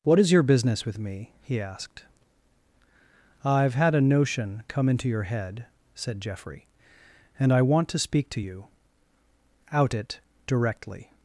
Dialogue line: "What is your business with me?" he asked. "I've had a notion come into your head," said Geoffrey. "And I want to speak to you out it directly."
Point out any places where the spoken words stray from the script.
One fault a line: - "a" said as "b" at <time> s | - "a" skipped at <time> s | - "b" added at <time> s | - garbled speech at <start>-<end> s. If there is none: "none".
none